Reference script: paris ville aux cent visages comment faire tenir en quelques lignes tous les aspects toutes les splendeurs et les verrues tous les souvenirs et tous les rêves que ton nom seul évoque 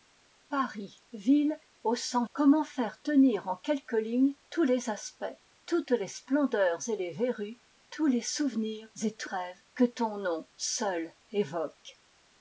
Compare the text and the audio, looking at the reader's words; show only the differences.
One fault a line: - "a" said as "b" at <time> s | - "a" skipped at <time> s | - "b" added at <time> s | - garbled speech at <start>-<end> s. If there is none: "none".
- "visages" skipped at 2.2 s
- "les" skipped at 9.3 s